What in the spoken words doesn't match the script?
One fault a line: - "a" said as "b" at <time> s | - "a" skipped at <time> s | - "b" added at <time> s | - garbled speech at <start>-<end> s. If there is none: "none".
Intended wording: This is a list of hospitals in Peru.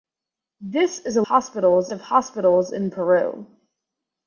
- "list" said as "hospitals" at 1.2 s